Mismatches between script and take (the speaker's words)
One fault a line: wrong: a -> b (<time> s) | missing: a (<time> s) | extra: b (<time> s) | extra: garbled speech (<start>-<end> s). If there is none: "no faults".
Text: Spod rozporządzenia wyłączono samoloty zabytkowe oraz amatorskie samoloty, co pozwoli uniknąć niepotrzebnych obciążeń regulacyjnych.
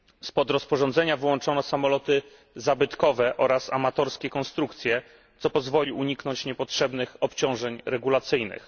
wrong: samoloty -> konstrukcje (4.3 s)